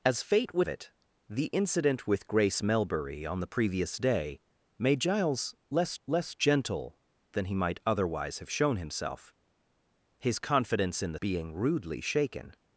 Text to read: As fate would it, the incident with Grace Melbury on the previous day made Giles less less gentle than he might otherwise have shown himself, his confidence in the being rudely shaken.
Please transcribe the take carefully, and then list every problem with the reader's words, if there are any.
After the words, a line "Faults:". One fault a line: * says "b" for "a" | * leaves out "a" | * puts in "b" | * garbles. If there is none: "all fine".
As fate would it, the incident with Grace Melbury on the previous day made Giles less less gentle than he might otherwise have shown himself, his confidence in the being rudely shaken.
Faults:
all fine